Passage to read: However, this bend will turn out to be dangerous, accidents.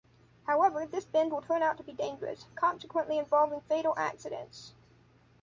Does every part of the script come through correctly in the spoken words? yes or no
no